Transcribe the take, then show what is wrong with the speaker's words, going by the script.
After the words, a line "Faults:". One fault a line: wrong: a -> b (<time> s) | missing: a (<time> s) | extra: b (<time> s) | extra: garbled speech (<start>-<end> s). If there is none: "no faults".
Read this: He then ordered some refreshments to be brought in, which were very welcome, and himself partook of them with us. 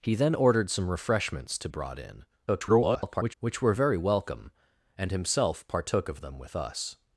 He then ordered some refreshments to brought in, [garbled] which were very welcome, and himself partook of them with us.
Faults:
missing: be (1.7 s)
extra: garbled speech (2.5-3.3 s)